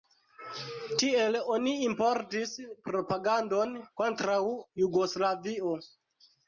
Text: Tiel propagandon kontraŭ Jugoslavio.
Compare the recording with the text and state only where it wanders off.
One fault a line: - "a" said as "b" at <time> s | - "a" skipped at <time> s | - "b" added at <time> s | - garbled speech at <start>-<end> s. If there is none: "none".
- "oni importis" added at 1.6 s